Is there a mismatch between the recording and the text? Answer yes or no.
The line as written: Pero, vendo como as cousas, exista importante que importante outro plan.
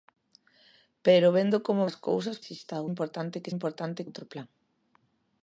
no